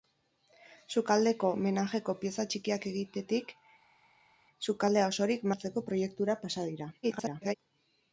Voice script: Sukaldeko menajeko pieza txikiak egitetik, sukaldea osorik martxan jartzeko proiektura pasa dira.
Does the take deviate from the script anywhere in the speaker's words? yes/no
yes